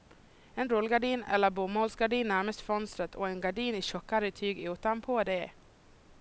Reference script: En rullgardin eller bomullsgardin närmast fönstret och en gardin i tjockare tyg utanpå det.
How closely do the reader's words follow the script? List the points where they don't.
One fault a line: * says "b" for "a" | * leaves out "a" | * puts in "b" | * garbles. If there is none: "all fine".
all fine